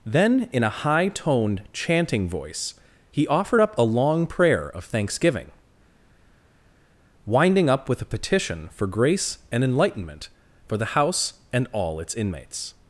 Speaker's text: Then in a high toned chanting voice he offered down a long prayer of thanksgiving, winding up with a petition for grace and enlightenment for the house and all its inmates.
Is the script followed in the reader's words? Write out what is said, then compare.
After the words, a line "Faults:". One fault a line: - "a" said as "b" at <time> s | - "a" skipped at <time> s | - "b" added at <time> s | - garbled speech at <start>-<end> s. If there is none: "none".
Then in a high toned chanting voice he offered up a long prayer of thanksgiving, winding up with a petition for grace and enlightenment for the house and all its inmates.
Faults:
- "down" said as "up" at 3.6 s